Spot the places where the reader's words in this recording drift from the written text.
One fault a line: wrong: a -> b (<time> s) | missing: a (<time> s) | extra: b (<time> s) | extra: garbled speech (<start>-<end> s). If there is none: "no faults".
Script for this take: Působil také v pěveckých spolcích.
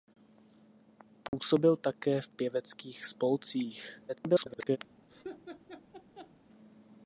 extra: garbled speech (4.1-4.8 s)